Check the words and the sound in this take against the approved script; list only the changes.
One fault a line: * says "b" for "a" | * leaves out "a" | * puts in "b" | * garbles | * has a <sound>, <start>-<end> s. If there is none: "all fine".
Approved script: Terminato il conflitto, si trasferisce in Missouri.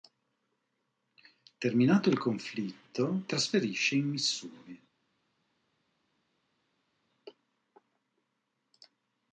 * leaves out "si"